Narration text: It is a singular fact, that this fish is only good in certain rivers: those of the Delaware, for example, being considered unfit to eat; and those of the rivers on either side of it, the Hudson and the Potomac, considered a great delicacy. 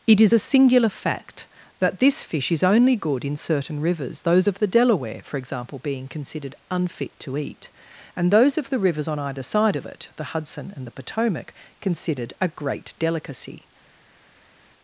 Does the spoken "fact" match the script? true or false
true